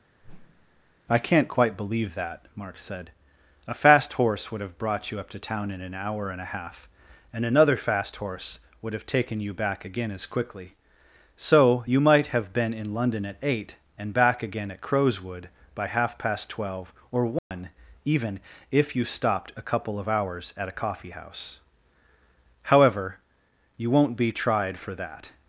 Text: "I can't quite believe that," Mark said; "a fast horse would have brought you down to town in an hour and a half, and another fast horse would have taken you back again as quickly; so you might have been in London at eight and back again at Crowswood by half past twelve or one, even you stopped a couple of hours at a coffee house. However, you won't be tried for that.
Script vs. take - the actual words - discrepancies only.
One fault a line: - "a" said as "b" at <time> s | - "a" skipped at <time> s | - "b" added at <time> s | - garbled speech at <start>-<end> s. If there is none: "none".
- "down" said as "up" at 5.2 s
- "if" added at 18.7 s